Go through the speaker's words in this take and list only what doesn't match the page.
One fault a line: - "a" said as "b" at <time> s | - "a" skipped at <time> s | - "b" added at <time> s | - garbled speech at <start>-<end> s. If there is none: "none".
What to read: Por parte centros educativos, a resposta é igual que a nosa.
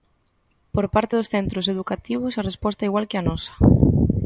- "dos" added at 1.1 s